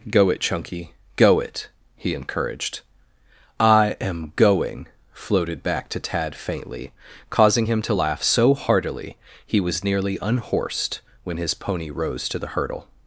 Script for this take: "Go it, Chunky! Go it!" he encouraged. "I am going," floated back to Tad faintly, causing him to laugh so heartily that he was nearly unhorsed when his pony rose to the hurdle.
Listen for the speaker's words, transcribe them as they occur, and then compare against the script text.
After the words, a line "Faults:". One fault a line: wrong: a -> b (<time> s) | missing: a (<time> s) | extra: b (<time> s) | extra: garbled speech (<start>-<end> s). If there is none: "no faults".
"Go it, Chunky! Go it!" he encouraged. "I am going," floated back to Tad faintly, causing him to laugh so heartily he was nearly unhorsed when his pony rose to the hurdle.
Faults:
missing: that (9.2 s)